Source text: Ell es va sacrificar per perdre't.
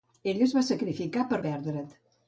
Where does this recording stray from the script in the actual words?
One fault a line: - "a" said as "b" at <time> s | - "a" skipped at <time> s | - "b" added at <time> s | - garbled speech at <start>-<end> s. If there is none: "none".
none